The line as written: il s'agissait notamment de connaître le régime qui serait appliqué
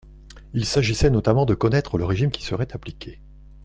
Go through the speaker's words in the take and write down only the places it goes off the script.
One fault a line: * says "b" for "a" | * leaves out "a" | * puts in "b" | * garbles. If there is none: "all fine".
all fine